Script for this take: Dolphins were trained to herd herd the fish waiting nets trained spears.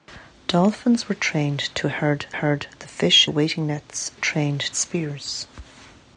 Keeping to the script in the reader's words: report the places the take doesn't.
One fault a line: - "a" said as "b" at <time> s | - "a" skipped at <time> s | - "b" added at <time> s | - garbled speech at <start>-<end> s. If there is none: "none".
none